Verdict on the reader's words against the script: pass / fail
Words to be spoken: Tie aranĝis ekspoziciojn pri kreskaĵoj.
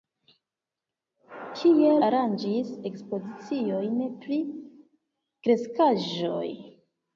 pass